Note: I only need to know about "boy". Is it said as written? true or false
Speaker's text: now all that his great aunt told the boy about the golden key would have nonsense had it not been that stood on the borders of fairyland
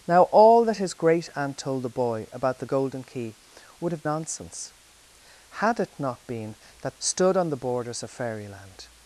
true